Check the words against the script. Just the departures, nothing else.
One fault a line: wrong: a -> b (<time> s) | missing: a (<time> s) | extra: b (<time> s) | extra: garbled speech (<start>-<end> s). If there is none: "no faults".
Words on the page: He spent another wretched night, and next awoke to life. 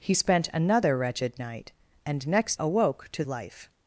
no faults